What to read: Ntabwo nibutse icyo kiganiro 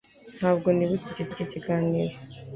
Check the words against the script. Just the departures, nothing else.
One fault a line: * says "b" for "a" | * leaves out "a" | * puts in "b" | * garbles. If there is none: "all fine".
* puts in "icyo"